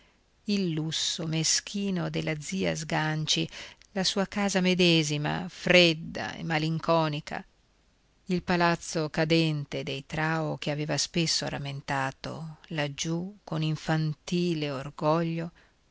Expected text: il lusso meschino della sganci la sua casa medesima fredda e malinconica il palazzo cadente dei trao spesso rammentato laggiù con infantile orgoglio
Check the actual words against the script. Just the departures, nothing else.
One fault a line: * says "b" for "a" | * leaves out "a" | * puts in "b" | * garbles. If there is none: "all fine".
* puts in "zia"
* puts in "che aveva"